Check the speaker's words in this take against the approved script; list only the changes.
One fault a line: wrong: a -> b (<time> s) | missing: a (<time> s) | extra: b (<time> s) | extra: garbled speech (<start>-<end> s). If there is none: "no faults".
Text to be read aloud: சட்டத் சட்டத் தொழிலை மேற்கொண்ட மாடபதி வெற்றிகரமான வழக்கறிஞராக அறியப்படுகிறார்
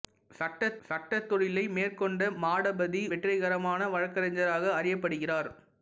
no faults